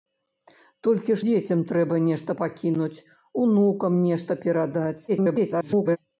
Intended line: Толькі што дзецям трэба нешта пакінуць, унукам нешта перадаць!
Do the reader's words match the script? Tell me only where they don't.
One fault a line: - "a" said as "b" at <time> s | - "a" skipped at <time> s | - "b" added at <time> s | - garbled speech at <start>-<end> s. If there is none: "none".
- "што" skipped at 1.2 s
- garbled speech at 5.1-6.0 s